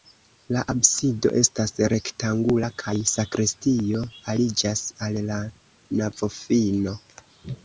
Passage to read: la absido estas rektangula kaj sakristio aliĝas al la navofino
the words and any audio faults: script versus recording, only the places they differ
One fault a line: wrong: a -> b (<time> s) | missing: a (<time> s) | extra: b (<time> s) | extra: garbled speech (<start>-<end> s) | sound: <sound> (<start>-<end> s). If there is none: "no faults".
no faults